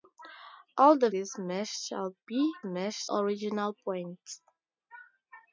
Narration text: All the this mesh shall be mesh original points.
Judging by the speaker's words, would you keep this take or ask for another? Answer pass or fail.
pass